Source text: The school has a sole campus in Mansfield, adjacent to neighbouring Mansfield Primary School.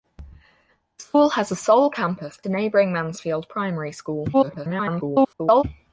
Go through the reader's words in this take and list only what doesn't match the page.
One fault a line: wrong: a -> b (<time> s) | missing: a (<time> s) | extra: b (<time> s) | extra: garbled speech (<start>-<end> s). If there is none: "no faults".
missing: in Mansfield adjacent (2.4 s)
extra: garbled speech (4.3-5.6 s)